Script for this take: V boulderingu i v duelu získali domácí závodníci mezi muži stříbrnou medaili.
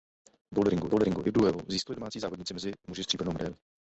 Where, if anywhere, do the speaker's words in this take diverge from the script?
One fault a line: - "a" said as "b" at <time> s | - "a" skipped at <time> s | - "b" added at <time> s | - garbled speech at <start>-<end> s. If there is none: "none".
- "boulderingu" added at 0.9 s